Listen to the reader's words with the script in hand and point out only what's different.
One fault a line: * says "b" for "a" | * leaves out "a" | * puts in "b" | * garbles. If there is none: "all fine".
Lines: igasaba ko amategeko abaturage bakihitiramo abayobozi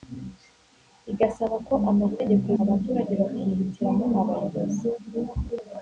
all fine